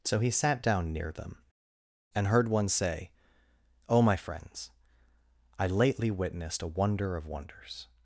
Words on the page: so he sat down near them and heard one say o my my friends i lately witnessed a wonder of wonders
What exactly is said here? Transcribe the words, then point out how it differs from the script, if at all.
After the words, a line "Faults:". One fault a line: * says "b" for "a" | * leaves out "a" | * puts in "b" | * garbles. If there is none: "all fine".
so he sat down near them and heard one say o my friends i lately witnessed a wonder of wonders
Faults:
* leaves out "my"